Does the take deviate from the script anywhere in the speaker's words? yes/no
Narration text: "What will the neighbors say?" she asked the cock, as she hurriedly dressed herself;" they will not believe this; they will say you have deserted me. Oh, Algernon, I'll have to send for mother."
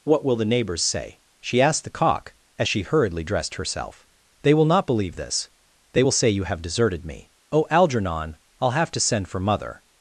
no